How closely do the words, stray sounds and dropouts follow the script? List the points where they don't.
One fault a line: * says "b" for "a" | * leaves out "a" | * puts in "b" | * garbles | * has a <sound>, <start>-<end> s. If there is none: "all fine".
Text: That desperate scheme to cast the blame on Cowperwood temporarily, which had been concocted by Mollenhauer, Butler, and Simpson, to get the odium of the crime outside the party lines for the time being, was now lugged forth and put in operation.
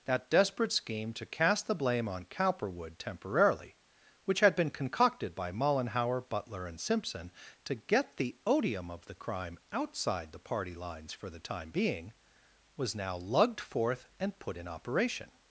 all fine